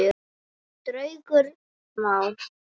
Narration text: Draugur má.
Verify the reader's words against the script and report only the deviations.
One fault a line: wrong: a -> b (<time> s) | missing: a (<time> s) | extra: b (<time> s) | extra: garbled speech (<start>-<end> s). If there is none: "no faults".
no faults